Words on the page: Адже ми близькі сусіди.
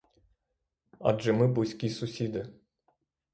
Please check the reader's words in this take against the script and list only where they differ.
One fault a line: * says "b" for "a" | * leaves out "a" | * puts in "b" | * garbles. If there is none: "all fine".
all fine